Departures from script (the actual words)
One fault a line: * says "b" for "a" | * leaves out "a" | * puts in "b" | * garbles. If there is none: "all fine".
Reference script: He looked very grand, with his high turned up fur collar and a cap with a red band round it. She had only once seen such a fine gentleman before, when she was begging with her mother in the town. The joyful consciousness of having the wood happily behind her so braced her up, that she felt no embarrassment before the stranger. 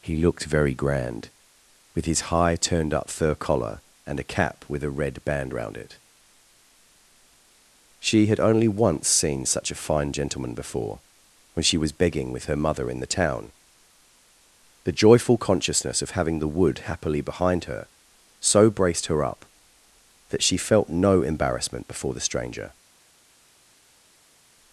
all fine